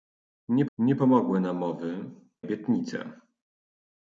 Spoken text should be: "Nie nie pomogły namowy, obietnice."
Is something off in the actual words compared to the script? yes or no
no